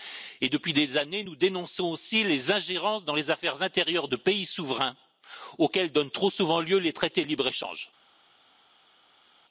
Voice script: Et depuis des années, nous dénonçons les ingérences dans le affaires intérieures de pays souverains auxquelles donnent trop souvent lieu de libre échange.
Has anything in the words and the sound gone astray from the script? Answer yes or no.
yes